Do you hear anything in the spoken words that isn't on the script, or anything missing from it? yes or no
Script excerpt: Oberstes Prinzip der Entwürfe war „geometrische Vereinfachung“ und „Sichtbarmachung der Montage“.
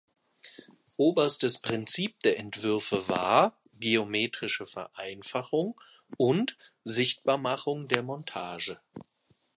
no